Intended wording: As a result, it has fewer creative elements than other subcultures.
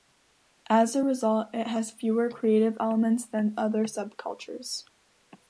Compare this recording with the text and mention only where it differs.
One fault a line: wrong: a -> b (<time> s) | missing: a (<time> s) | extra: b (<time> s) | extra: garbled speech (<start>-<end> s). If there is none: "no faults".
no faults